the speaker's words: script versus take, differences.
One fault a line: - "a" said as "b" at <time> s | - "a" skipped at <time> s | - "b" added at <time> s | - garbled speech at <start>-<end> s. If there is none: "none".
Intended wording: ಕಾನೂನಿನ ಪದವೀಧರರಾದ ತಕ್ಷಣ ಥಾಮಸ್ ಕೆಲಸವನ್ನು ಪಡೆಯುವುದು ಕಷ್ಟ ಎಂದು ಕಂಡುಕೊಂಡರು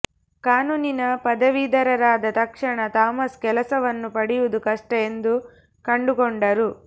none